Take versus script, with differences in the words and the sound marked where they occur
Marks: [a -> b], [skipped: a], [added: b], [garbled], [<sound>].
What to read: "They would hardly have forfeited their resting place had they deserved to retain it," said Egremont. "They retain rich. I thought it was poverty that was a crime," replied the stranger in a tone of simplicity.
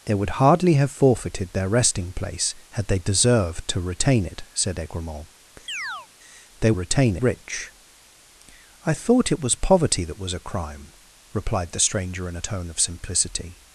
"They would hardly have forfeited their resting place had they deserved to retain it," said Egremont. [chirp] "They retain rich. I thought it was poverty that was a crime," replied the stranger in a tone of simplicity.